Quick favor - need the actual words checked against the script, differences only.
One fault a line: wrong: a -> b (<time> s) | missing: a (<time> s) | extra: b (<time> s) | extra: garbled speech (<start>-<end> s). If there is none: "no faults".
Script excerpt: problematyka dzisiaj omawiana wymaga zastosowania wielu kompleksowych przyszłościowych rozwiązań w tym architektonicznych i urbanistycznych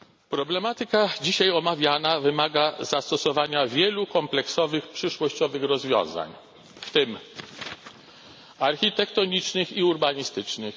no faults